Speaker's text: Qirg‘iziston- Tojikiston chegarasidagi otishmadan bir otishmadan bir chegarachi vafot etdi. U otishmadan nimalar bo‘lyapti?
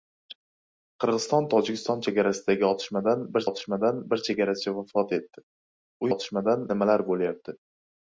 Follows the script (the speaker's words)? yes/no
yes